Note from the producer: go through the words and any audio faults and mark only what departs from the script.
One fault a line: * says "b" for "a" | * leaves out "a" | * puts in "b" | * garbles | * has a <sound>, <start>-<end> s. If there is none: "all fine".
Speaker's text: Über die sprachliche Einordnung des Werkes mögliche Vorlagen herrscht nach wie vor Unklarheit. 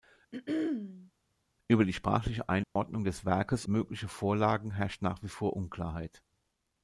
* has a throat clearing, 0.3-1.1 s
* has a dropout, 2.6-2.8 s